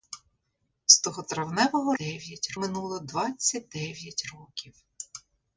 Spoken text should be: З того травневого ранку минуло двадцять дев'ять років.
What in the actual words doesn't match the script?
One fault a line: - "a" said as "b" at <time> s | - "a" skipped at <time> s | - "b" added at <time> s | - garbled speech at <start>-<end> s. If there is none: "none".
- "ранку" said as "дев'ять" at 1.9 s